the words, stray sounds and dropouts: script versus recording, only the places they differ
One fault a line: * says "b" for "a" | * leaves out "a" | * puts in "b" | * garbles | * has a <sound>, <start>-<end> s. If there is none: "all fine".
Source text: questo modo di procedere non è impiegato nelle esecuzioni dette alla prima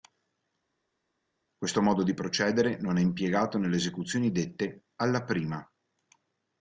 all fine